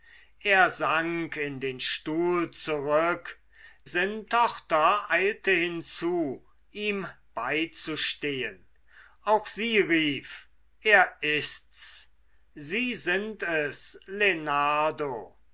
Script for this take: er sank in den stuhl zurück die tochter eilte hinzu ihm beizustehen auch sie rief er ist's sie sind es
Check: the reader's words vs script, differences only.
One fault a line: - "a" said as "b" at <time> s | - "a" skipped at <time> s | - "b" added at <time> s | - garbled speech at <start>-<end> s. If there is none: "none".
- "die" said as "sind" at 3.8 s